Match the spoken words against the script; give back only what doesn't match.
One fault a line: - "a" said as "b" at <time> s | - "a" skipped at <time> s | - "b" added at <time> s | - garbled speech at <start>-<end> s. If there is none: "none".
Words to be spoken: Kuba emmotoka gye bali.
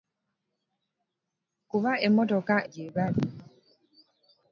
none